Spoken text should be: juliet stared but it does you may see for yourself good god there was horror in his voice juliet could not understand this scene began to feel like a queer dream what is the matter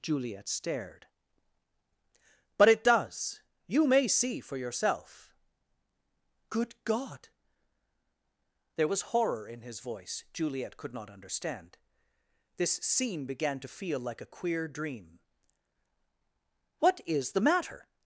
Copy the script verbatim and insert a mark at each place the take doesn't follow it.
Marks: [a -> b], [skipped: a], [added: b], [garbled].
juliet stared but it does you may see for yourself good god there was horror in his voice juliet could not understand this scene began to feel like a queer dream what is the matter